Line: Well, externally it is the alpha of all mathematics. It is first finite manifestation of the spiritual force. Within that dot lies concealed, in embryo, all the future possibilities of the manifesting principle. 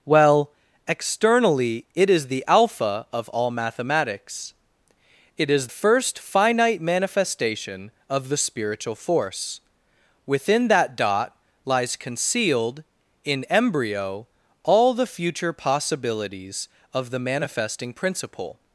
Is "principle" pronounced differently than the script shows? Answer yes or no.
no